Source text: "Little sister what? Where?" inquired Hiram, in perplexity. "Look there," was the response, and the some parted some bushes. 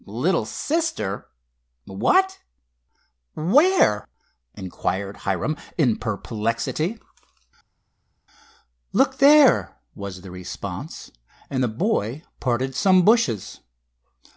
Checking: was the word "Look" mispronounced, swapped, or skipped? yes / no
no